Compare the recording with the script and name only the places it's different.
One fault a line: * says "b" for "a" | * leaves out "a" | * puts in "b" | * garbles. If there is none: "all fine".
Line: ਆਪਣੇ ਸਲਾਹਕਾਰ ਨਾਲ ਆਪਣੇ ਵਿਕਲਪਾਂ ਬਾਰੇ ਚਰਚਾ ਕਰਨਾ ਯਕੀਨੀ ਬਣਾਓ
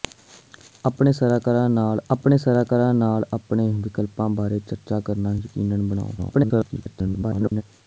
* puts in "ਸਲਾਹਕਾਰ ਨਾਲ ਆਪਣੇ"
* garbles